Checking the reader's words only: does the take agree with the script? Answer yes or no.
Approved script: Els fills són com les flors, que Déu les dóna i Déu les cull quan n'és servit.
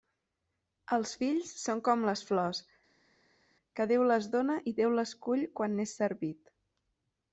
yes